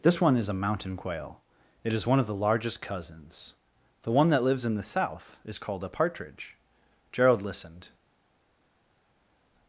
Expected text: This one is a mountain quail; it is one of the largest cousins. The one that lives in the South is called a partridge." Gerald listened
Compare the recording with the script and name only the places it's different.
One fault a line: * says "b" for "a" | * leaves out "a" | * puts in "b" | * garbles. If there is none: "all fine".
all fine